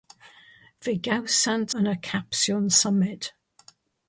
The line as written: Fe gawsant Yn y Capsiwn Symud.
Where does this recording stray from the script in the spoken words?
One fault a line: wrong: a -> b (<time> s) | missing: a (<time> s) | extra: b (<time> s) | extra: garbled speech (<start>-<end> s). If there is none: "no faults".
no faults